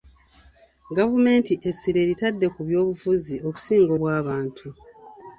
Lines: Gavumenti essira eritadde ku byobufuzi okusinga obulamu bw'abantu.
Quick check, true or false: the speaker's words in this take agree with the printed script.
false